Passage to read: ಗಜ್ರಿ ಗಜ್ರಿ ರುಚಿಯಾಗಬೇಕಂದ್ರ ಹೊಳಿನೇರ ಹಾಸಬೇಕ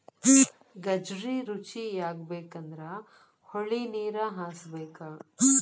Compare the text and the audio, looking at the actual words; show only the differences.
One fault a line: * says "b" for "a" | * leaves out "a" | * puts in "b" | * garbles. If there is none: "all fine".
* leaves out "ಗಜ್ರಿ"